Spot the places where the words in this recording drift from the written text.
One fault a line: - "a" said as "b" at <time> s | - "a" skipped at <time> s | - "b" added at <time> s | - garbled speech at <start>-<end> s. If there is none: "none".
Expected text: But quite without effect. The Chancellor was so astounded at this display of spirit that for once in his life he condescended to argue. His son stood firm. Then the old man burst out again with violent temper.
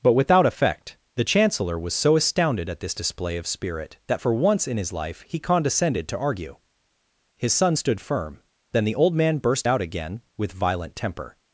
- "quite" skipped at 0.1 s